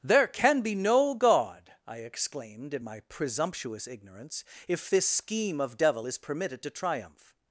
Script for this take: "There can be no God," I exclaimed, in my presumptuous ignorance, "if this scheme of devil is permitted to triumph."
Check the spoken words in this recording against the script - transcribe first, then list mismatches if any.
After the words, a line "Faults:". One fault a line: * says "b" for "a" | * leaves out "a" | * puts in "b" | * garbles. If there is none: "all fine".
"There can be no God," I exclaimed, in my presumptuous ignorance, "if this scheme of devil is permitted to triumph."
Faults:
all fine